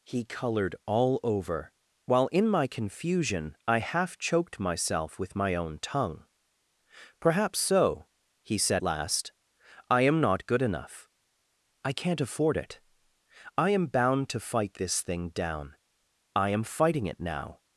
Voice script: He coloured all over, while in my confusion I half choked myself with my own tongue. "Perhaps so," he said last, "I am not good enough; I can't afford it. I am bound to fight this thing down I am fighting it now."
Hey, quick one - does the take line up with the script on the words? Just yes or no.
yes